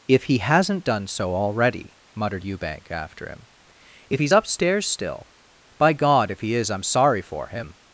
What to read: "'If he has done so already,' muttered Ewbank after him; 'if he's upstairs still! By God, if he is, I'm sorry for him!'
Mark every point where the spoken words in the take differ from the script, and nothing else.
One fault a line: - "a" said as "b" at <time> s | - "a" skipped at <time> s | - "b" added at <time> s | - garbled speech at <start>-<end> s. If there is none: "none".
- "has" said as "hasn't" at 0.4 s